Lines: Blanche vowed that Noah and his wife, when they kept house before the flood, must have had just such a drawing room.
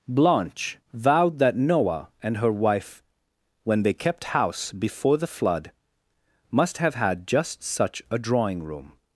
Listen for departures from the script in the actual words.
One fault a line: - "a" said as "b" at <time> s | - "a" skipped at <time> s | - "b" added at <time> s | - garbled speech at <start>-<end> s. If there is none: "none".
- "his" said as "her" at 2.4 s